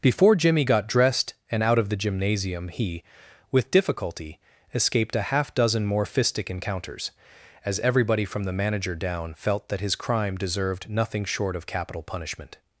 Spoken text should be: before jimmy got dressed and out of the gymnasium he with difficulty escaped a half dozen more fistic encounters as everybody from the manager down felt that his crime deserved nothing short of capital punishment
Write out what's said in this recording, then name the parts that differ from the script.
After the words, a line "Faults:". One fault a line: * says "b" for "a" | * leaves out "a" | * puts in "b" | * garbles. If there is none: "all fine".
before jimmy got dressed and out of the gymnasium he with difficulty escaped a half dozen more fistic encounters as everybody from the manager down felt that his crime deserved nothing short of capital punishment
Faults:
all fine